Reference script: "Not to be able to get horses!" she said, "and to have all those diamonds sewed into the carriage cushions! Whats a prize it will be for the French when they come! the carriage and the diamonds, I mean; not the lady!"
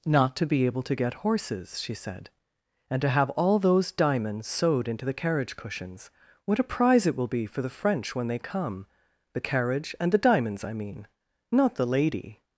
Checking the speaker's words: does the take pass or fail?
fail